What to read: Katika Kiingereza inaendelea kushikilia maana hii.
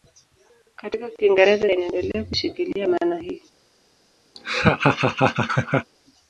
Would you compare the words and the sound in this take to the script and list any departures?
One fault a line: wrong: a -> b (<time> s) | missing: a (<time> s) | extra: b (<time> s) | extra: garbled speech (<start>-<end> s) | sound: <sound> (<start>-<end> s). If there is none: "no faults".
sound: laugh (4.3-5.9 s)